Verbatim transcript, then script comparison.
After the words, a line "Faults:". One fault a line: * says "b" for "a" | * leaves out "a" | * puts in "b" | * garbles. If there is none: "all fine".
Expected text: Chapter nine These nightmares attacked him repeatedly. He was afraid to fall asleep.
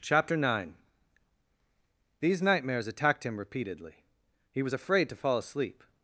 Chapter nine These nightmares attacked him repeatedly. He was afraid to fall asleep.
Faults:
all fine